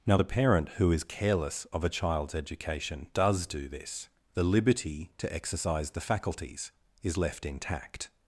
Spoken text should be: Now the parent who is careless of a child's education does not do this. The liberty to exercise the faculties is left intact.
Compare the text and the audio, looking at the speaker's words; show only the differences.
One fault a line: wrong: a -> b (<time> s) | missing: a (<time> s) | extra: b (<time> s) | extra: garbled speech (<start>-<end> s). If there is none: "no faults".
missing: not (3.5 s)